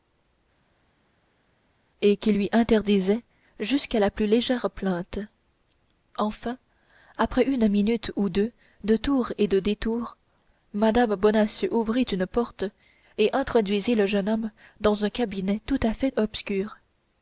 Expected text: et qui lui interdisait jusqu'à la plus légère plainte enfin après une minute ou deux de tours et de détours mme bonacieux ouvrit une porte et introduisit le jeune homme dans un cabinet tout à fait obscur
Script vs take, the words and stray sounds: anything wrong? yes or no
no